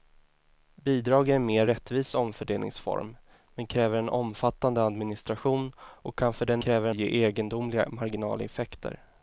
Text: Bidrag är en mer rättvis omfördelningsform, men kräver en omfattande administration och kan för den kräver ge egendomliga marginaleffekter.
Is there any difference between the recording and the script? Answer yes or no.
no